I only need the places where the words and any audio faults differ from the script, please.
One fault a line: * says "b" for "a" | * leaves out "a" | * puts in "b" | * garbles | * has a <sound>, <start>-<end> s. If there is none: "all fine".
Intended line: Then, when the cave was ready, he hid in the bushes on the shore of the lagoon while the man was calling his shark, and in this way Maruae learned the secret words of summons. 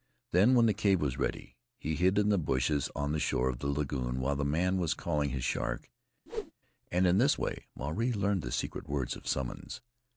* has a whoosh, 6.3-6.5 s